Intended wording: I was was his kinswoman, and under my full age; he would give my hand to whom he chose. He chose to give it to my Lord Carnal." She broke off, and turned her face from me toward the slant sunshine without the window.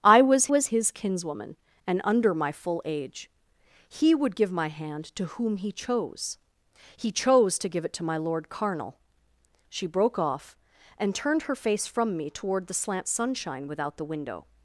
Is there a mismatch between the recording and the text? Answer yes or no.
no